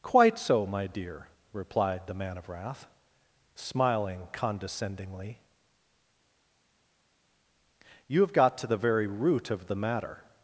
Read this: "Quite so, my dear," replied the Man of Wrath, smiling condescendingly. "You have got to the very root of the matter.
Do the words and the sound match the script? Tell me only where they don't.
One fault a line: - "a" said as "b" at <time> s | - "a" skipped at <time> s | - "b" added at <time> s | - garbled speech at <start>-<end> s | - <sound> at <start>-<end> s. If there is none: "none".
none